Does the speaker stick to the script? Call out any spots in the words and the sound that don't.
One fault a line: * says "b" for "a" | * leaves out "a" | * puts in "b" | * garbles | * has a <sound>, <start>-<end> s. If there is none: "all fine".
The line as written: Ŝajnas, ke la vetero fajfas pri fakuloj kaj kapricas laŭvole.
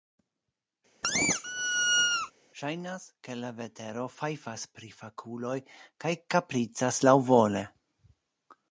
* has a squeak, 1.0-2.3 s